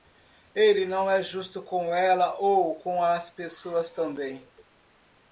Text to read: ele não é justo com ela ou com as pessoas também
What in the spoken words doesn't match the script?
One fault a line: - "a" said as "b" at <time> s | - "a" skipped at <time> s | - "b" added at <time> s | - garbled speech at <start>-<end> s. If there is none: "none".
none